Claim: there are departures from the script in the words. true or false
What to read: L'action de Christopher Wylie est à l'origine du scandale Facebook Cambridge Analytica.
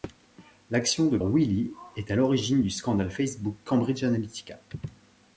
true